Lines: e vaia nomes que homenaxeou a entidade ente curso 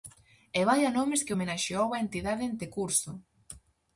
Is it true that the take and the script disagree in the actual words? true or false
false